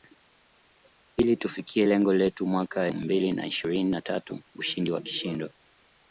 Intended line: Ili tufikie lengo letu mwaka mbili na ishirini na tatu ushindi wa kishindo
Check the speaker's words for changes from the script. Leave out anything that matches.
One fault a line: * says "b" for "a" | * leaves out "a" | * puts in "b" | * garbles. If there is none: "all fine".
all fine